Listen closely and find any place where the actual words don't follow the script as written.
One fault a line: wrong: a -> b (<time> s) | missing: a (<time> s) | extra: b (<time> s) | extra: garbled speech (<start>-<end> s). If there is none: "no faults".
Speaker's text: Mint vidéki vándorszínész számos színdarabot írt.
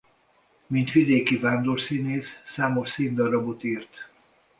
no faults